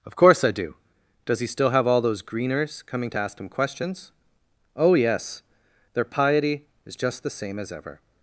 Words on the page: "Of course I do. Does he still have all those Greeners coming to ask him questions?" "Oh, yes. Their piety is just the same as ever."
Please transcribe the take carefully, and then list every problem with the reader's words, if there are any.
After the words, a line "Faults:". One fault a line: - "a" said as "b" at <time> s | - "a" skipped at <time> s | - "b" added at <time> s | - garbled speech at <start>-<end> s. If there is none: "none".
"Of course I do. Does he still have all those Greeners coming to ask him questions?" "Oh, yes. Their piety is just the same as ever."
Faults:
none